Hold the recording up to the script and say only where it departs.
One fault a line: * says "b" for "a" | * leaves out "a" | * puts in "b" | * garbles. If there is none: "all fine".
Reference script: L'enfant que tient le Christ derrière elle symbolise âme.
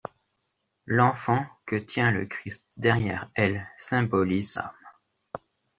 all fine